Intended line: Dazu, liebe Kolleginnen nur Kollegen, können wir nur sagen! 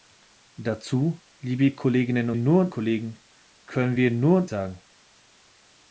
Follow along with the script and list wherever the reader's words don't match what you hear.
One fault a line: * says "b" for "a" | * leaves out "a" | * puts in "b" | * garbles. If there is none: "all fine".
all fine